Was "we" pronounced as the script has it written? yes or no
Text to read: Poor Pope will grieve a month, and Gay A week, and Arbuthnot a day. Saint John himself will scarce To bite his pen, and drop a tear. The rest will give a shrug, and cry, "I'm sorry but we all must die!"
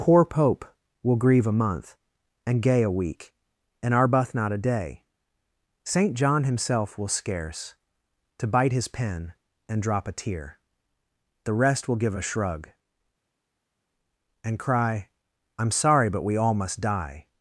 yes